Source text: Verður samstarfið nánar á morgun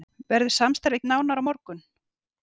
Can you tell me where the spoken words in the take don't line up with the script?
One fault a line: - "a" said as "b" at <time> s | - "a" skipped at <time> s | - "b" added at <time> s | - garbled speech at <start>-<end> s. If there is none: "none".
none